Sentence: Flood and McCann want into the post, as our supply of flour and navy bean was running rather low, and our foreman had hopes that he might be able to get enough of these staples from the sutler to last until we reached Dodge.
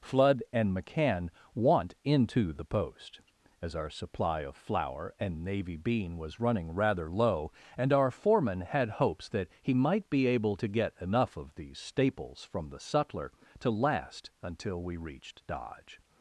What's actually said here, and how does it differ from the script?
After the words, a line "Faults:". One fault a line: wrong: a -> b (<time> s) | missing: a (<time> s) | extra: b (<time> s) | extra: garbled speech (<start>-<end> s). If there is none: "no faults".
Flood and McCann want into the post, as our supply of flour and navy bean was running rather low, and our foreman had hopes that he might be able to get enough of these staples from the sutler to last until we reached Dodge.
Faults:
no faults